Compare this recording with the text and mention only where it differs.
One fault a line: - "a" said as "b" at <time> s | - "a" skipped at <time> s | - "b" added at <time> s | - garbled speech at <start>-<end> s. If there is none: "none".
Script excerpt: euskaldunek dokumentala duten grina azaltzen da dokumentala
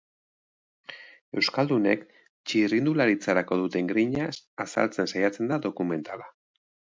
- "dokumentala" said as "txirrindularitzarako" at 2.5 s
- "saiatzen" added at 5.1 s